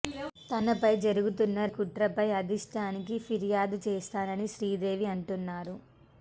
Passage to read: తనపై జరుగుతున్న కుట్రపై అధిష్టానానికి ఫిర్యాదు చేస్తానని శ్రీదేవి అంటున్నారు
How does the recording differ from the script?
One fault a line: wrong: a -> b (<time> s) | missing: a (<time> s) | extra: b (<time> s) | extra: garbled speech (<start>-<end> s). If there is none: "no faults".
no faults